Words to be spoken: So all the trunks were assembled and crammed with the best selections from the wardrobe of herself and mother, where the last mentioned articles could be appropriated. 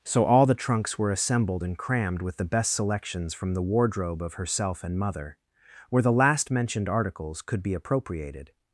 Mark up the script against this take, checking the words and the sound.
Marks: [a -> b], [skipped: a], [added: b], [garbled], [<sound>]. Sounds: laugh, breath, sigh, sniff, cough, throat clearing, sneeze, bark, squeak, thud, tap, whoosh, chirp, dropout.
So all the trunks were assembled and crammed with the best selections from the wardrobe of herself and mother, where the last mentioned articles could be appropriated.